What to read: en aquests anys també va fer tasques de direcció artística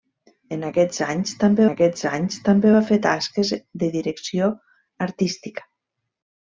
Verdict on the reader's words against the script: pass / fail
fail